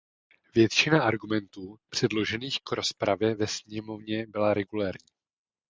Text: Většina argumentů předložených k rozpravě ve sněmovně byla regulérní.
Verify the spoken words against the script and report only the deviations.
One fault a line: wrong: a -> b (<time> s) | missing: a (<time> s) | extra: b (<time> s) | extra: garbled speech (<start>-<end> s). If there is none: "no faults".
no faults